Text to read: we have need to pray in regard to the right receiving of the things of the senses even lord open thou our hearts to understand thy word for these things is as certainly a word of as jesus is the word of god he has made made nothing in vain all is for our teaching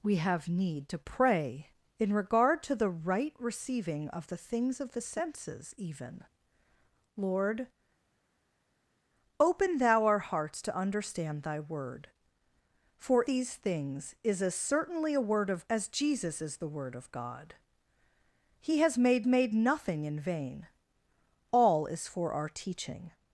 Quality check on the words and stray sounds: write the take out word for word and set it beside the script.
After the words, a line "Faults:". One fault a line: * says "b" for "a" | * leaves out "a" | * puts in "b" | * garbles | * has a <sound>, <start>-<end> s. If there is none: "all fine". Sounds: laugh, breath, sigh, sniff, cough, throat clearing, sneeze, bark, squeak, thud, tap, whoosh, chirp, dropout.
we have need to pray in regard to the right receiving of the things of the senses even lord open thou our hearts to understand thy word for these things is as certainly a word of as jesus is the word of god he has made made nothing in vain all is for our teaching
Faults:
all fine